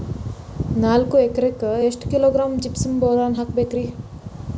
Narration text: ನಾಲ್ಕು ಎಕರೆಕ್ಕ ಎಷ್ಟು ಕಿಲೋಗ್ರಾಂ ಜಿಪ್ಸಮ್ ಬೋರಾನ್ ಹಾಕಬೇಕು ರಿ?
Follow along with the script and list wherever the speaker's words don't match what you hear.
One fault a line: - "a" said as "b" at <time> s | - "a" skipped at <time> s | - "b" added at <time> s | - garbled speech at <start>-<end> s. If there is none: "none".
none